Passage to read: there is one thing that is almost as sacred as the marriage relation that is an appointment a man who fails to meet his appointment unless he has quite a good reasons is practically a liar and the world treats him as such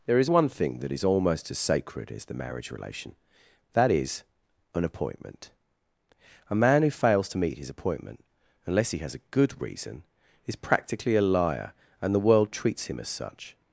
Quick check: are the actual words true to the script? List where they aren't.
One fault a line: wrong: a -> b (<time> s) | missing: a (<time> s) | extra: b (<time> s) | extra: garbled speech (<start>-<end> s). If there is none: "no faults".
missing: quite (9.1 s)
wrong: reasons -> reason (9.6 s)